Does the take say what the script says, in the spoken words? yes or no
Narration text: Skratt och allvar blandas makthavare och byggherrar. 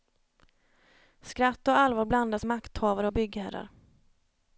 yes